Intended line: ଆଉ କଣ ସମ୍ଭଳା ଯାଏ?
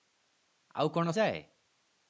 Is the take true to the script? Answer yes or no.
no